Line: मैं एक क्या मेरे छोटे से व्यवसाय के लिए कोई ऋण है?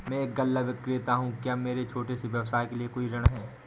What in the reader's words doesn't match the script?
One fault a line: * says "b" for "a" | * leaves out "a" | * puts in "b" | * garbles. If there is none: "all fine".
* puts in "गल्ला विक्रेता हूँ"